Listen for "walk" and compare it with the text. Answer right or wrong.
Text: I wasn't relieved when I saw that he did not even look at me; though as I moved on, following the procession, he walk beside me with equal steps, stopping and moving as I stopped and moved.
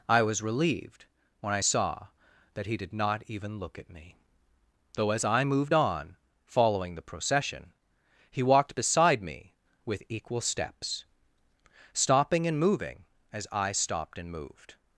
wrong